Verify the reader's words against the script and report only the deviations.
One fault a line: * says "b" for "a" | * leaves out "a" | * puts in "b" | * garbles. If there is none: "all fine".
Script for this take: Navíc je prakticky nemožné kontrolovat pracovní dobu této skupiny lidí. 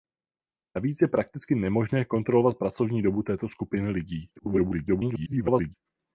* garbles